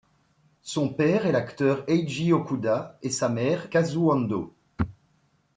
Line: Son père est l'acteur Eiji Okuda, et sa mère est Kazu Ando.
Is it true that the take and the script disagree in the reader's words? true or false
true